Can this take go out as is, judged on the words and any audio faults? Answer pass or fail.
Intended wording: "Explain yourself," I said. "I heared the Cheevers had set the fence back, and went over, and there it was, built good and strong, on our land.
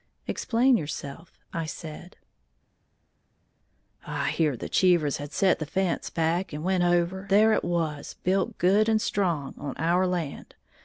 fail